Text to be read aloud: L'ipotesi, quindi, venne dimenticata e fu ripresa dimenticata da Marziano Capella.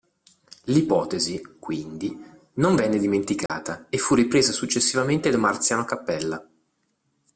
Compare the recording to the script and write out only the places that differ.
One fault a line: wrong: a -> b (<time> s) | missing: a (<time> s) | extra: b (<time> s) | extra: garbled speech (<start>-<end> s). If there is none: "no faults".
extra: non (2.5 s)
wrong: dimenticata -> successivamente (4.5 s)